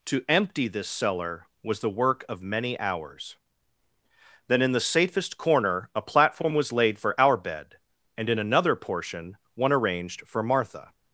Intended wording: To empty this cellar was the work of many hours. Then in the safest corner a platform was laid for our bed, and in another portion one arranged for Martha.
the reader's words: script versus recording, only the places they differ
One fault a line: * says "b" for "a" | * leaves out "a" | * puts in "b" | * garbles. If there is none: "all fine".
all fine